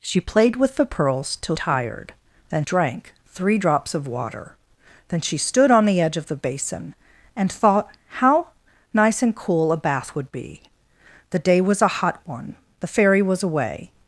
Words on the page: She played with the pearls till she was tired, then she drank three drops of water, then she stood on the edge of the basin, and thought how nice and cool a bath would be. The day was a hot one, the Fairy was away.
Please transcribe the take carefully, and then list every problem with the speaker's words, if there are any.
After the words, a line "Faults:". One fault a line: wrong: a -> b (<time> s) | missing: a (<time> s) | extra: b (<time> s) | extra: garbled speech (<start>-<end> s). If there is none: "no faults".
She played with the pearls till tired, then drank three drops of water, then she stood on the edge of the basin, and thought how nice and cool a bath would be. The day was a hot one, the Fairy was away.
Faults:
missing: she was (1.6 s)
missing: she (2.6 s)